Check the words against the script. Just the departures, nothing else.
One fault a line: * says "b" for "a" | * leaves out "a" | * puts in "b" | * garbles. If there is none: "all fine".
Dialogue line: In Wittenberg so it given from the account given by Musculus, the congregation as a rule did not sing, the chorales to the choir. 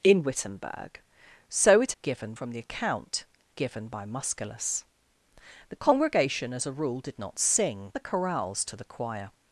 all fine